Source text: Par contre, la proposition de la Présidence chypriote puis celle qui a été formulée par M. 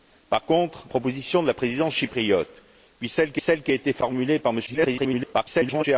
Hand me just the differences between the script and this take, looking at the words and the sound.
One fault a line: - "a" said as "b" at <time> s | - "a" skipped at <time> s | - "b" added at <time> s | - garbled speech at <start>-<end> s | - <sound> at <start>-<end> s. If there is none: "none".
- "la" skipped at 0.9 s
- "celle qui" added at 3.4 s
- garbled speech at 4.7-5.8 s